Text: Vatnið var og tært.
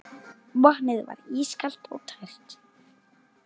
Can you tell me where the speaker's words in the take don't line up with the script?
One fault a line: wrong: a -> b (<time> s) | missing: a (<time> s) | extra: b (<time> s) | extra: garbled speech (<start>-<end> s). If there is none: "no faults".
extra: ískalt (1.4 s)